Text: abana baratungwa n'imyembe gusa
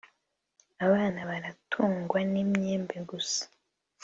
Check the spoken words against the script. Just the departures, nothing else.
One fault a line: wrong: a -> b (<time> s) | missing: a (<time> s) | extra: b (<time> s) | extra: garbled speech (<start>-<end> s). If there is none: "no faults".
no faults